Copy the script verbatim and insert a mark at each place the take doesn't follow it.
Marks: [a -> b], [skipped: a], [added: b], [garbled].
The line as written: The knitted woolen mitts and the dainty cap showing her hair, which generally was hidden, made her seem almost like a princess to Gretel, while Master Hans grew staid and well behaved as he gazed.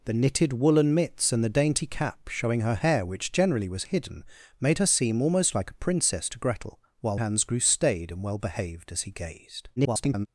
The knitted woolen mitts and the dainty cap showing her hair, which generally was hidden, made her seem almost like a princess to Gretel, while [skipped: Master] Hans grew staid and well behaved as he gazed. [garbled]